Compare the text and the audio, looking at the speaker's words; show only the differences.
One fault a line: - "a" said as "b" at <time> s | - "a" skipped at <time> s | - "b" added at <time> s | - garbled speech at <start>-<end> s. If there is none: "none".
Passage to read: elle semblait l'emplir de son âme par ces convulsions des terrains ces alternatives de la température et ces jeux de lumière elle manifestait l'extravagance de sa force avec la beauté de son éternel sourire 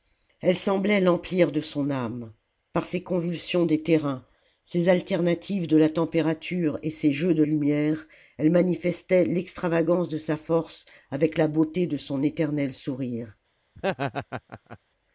none